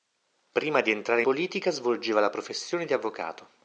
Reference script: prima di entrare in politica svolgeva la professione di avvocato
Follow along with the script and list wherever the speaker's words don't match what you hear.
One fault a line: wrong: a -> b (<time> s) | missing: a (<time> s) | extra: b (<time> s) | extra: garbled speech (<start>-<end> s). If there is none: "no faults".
missing: in (1.2 s)